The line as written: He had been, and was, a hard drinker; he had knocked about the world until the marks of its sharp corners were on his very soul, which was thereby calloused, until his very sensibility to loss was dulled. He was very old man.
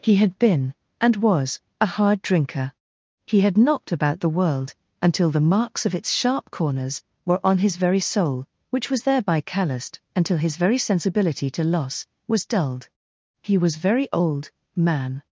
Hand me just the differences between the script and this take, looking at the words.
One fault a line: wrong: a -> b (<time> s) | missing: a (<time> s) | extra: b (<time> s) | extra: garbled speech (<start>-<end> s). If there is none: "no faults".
no faults